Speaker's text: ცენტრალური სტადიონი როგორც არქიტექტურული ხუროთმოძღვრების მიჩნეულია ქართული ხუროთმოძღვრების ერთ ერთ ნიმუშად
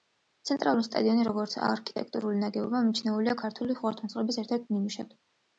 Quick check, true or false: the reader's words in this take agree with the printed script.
false